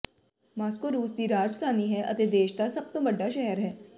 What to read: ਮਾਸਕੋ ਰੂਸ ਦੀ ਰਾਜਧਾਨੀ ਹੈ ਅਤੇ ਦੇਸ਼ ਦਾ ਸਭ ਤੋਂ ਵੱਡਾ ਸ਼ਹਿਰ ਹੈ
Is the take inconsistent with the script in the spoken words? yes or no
no